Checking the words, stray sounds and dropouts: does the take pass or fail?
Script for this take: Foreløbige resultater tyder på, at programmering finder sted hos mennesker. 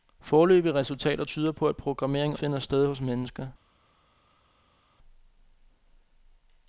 pass